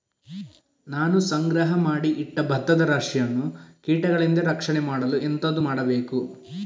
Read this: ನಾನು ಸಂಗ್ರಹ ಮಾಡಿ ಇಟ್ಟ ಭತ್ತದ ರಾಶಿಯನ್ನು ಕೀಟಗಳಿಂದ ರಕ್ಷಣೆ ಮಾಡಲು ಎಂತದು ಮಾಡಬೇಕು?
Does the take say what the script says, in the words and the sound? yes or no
yes